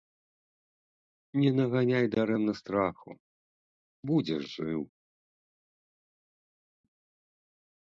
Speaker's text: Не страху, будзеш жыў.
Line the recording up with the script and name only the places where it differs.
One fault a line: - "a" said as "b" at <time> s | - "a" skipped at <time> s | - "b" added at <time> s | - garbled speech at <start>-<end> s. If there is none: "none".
- "наганяй дарэмна" added at 1.6 s